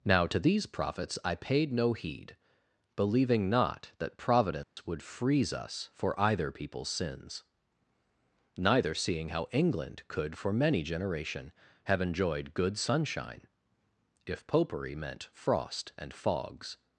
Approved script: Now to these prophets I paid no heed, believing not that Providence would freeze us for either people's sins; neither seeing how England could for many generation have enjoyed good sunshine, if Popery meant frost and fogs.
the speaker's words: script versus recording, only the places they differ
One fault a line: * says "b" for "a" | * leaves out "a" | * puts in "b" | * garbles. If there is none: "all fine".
all fine